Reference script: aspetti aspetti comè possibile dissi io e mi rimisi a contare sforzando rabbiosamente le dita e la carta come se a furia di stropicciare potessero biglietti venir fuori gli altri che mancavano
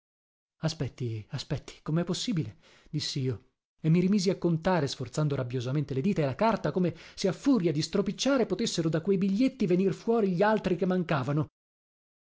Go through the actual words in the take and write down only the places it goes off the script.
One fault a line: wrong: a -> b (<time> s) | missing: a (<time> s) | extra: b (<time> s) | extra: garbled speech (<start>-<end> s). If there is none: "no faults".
extra: da quei (8.9 s)